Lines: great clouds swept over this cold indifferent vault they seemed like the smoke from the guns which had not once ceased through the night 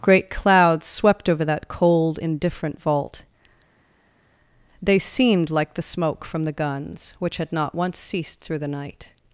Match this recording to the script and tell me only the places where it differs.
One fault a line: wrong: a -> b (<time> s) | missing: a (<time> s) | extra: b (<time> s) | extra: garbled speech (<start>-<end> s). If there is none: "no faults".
wrong: this -> that (1.4 s)